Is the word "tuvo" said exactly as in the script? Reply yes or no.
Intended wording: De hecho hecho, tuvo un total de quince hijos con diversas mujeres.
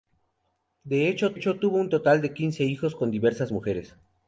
yes